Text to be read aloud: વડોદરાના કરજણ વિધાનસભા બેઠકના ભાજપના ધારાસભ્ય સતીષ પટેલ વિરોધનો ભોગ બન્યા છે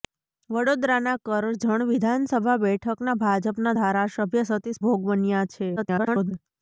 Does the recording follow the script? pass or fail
fail